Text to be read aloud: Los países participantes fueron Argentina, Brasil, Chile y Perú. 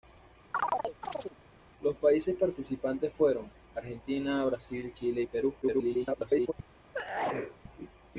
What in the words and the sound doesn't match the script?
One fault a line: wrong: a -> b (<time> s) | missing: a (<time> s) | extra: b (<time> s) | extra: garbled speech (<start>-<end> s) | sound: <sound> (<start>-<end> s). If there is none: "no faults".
sound: chirp (0.5-1.4 s)
extra: garbled speech (5.6-6.5 s)
sound: sneeze (6.9-7.6 s)